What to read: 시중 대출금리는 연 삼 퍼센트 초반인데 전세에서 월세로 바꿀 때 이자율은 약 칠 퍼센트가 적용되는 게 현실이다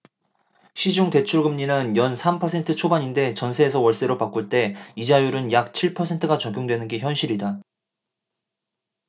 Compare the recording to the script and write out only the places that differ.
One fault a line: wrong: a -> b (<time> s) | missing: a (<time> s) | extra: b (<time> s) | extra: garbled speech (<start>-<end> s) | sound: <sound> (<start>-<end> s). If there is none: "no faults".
no faults